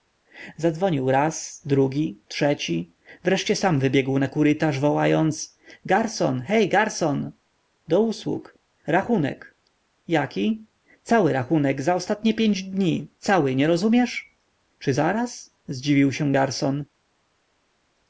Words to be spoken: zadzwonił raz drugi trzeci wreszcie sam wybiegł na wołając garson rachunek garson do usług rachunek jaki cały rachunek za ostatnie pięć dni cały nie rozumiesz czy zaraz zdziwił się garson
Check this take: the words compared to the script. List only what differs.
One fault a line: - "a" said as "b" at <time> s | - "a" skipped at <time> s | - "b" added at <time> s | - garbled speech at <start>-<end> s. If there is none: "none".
- "kurytarz" added at 4.3 s
- "rachunek" said as "hej" at 6.4 s